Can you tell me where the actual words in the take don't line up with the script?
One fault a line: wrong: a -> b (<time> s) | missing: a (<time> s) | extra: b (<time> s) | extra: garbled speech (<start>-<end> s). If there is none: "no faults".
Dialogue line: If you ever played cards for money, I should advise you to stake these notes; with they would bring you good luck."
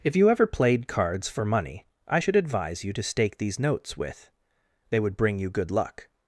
no faults